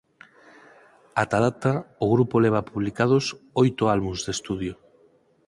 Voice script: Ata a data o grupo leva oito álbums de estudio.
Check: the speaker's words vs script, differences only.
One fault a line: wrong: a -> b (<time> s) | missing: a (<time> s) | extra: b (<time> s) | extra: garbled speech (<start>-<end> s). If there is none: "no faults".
extra: publicados (2.7 s)